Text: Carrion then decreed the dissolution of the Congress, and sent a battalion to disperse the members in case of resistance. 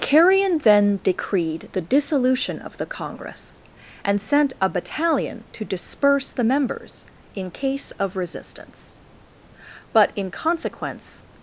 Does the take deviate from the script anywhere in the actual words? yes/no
yes